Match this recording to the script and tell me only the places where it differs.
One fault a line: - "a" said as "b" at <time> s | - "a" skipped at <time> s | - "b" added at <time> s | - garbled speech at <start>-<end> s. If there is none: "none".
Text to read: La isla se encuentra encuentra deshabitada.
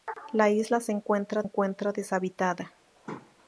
none